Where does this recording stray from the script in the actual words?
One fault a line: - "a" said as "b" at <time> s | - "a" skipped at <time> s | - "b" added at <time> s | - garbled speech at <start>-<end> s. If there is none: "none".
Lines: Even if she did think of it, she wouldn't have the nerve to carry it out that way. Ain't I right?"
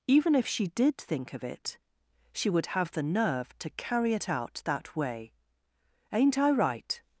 - "wouldn't" said as "would" at 2.5 s